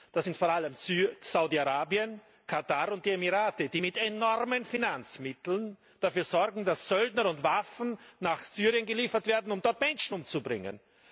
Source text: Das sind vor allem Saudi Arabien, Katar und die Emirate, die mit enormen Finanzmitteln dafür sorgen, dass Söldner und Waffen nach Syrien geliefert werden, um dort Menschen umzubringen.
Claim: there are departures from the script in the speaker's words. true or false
false